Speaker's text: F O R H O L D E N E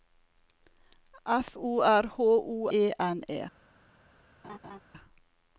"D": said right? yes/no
no